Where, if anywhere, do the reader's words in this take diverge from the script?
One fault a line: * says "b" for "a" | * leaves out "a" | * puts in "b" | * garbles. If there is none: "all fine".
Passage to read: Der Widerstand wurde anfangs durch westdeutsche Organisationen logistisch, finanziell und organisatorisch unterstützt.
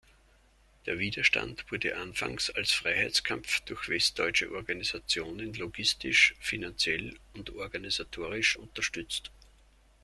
* puts in "als Freiheitskampf"